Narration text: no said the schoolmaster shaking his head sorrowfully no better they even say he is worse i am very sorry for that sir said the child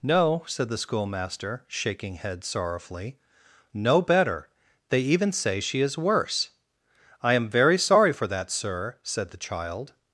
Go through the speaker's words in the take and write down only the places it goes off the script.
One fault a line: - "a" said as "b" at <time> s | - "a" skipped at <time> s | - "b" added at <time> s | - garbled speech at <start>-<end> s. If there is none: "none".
- "his" skipped at 2.1 s
- "he" said as "she" at 5.6 s